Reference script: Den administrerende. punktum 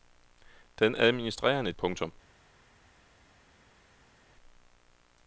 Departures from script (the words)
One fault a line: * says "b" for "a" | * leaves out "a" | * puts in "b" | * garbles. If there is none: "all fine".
all fine